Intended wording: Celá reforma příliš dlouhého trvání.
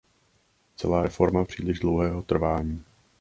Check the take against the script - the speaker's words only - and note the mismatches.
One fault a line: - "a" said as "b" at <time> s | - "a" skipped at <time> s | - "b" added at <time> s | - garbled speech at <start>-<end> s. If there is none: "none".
none